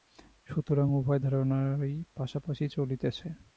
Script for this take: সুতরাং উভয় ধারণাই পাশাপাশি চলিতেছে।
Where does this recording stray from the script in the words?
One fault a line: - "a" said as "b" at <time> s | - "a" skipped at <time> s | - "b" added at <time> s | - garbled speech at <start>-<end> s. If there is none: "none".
none